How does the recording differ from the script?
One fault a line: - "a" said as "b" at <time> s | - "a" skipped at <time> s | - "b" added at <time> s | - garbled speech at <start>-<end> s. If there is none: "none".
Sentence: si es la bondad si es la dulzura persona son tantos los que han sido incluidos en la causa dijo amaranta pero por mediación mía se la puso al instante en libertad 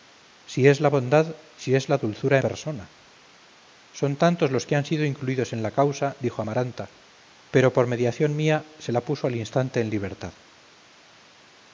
none